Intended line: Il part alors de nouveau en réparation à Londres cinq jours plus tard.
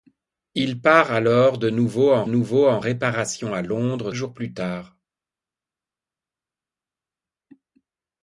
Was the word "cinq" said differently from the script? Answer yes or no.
yes